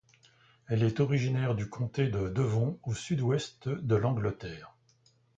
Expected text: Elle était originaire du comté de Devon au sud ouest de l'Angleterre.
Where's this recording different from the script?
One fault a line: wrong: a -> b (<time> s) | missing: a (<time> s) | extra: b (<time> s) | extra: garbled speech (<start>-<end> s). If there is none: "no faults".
wrong: était -> est (0.8 s)